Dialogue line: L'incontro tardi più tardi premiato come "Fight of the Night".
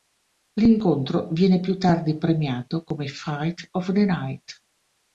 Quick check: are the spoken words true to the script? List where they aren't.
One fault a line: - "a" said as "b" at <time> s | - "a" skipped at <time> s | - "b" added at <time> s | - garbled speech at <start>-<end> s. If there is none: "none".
- "tardi" said as "viene" at 1.3 s